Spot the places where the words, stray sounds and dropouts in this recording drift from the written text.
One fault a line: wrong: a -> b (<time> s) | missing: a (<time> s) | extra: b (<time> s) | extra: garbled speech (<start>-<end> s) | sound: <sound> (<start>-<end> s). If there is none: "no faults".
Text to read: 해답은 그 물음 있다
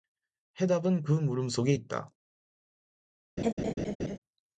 extra: 속에 (1.5 s)
sound: laugh (3.4-4.2 s)